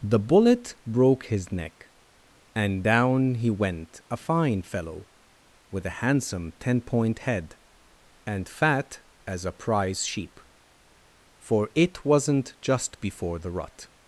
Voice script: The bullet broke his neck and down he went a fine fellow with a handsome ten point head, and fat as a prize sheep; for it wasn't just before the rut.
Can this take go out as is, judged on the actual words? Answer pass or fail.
pass